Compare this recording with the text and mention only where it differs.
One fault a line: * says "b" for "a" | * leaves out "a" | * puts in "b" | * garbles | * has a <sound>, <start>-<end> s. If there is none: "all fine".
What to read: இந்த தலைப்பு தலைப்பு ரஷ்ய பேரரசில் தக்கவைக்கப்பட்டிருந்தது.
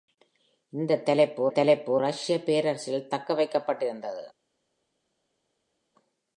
all fine